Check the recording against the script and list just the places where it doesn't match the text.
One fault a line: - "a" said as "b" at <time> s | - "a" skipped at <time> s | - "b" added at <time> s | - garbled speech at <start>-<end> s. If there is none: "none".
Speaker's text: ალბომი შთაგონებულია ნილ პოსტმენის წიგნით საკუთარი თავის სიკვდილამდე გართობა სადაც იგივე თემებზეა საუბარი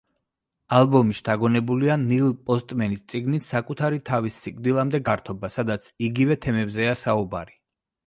none